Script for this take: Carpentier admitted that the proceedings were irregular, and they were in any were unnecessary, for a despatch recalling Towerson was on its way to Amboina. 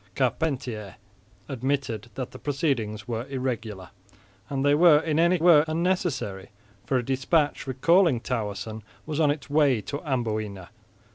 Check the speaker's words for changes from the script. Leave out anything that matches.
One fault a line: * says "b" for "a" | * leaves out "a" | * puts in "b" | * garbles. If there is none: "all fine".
all fine